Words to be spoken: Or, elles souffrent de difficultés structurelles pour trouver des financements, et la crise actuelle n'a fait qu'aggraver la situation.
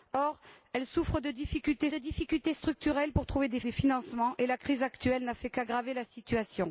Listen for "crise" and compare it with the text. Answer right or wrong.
right